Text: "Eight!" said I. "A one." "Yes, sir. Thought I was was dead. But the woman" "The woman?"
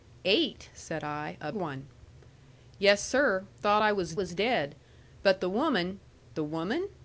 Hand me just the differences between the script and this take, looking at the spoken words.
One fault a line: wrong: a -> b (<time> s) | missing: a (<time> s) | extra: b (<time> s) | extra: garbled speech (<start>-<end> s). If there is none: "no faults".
no faults